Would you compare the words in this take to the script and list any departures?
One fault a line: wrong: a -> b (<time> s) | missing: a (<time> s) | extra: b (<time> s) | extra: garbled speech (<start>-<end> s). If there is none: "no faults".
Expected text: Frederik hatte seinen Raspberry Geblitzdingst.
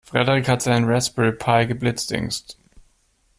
wrong: hatte -> hat (0.5 s)
extra: Pi (1.3 s)